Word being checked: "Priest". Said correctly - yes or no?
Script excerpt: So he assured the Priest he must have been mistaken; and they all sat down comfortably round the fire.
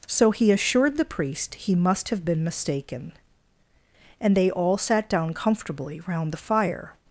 yes